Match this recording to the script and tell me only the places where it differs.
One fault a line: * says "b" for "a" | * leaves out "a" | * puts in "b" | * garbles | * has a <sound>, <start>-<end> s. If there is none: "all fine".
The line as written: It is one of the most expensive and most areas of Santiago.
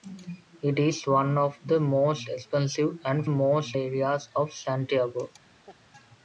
* has a laugh, 5.7-5.8 s